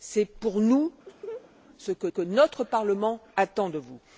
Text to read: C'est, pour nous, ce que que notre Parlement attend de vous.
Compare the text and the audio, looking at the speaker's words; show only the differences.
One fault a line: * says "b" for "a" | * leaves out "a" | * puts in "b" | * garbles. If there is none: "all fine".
all fine